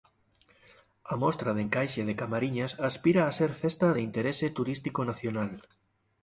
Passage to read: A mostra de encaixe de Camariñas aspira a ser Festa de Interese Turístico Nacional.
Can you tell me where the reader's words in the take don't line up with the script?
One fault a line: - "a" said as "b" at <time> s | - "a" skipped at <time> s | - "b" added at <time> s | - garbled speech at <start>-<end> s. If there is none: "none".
none